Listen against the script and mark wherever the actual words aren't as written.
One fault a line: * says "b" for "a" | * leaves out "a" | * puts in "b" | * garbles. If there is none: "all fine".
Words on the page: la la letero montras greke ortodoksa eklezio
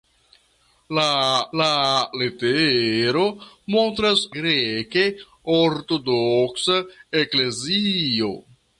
all fine